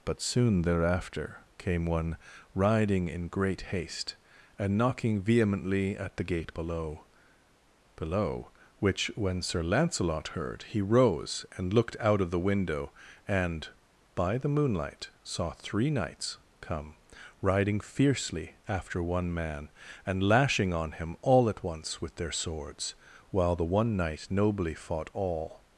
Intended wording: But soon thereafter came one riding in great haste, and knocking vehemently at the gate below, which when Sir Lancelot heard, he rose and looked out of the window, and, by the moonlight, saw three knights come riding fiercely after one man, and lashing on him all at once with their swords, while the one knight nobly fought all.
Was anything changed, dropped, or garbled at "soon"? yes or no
no